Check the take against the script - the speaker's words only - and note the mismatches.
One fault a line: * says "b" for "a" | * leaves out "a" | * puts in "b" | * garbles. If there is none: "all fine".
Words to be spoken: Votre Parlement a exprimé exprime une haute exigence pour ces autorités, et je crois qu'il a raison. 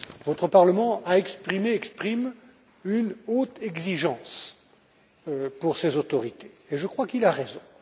all fine